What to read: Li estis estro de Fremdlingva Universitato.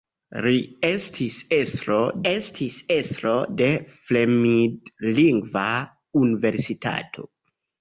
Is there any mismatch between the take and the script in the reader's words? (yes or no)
yes